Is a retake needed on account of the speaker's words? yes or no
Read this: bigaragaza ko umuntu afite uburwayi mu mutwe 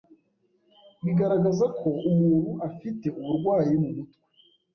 no